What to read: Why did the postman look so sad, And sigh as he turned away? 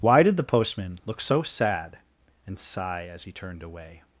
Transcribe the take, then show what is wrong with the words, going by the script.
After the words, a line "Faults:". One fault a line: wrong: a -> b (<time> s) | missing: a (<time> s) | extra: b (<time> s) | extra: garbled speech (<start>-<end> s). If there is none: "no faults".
Why did the postman look so sad, And sigh as he turned away?
Faults:
no faults